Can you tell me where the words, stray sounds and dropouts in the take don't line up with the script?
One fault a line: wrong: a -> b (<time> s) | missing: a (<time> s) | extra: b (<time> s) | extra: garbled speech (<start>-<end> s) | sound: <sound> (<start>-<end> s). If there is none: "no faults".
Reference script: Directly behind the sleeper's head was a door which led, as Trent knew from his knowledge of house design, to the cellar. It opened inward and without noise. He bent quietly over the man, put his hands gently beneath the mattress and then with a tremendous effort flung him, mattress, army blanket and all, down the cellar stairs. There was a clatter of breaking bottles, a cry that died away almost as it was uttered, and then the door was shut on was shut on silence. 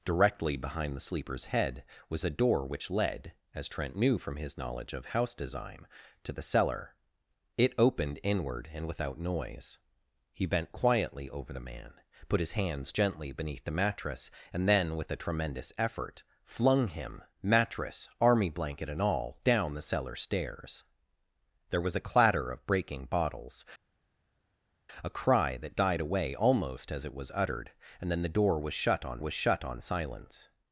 no faults